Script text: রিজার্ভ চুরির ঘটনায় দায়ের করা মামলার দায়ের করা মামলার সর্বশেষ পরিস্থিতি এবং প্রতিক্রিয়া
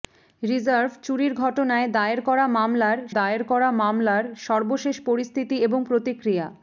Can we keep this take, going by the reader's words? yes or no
yes